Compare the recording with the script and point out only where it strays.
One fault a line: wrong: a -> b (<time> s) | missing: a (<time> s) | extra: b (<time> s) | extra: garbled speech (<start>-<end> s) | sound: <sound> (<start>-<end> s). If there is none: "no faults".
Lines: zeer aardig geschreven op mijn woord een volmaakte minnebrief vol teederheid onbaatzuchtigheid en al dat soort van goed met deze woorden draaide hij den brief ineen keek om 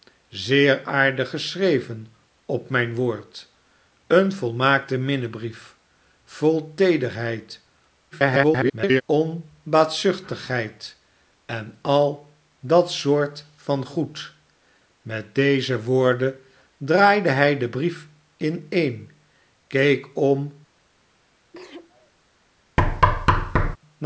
extra: garbled speech (8.1-9.0 s)
sound: sneeze (21.5-22.1 s)
sound: thud (22.8-23.8 s)